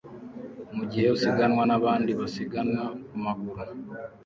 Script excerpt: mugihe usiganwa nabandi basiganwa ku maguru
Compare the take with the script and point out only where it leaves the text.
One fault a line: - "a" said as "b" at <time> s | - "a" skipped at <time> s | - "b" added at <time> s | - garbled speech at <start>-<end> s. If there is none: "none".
none